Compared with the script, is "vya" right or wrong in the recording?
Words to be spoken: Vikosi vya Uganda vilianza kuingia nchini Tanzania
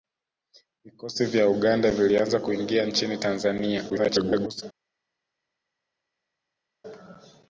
right